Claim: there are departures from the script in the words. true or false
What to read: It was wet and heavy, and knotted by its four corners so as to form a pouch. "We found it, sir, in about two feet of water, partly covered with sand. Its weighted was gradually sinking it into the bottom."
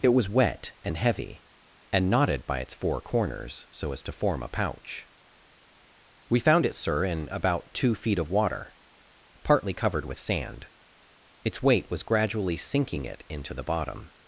true